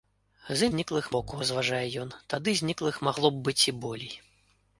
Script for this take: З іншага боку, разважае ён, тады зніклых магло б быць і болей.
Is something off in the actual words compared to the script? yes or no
yes